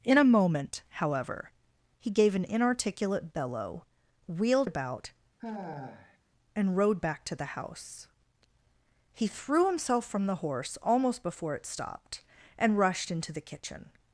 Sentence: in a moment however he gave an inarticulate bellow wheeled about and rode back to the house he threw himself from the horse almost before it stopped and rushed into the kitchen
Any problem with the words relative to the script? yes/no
no